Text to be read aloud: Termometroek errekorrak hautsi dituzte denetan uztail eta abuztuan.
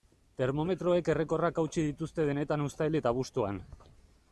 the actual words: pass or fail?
pass